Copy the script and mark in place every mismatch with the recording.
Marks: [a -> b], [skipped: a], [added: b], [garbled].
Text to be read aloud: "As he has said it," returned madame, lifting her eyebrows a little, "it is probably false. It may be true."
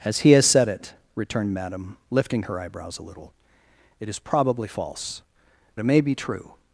"As he has said it," returned madame, lifting her eyebrows a little, "it is probably false. It may be true."